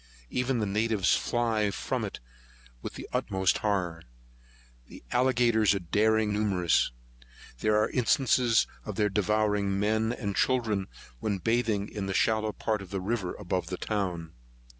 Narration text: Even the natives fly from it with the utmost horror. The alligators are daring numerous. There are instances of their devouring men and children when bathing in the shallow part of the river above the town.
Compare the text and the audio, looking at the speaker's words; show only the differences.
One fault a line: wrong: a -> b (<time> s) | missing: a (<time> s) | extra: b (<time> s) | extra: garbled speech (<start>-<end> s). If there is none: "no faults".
no faults